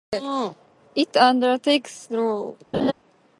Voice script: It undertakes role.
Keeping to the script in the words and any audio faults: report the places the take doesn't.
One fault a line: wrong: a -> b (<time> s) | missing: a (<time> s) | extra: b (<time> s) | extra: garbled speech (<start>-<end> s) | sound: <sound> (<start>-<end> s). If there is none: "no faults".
sound: laugh (2.7-2.9 s)